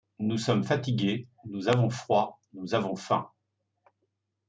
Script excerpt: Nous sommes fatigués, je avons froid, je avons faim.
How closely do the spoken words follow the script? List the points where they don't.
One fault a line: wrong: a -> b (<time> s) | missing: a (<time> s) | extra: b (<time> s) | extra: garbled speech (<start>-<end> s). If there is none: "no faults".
wrong: je -> nous (1.4 s)
wrong: je -> nous (2.5 s)